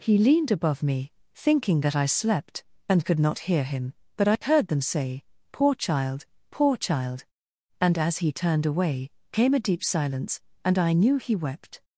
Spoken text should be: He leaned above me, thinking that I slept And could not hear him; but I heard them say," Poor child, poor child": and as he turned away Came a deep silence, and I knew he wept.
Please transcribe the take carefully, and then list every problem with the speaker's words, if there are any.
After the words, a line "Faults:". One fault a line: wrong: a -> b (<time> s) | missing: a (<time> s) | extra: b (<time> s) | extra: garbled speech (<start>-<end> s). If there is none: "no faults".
He leaned above me, thinking that I slept And could not hear him; but I heard them say," Poor child, poor child": and as he turned away Came a deep silence, and I knew he wept.
Faults:
no faults